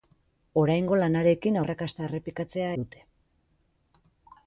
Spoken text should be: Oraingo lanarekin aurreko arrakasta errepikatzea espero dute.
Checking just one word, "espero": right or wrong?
wrong